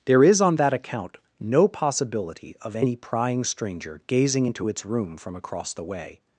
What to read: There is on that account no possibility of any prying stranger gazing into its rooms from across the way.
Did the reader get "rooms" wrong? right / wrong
wrong